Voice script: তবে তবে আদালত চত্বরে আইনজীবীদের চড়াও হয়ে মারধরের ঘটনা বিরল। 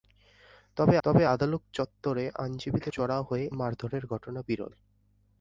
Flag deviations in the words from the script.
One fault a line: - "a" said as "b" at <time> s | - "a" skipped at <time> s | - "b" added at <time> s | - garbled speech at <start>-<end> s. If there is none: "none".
none